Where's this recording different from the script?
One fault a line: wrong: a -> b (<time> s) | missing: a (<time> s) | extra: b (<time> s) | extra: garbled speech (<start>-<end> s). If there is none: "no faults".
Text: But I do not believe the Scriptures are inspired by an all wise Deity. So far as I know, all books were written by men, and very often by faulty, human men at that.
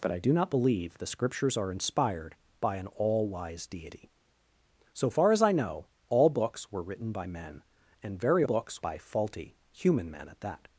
wrong: often -> books (8.4 s)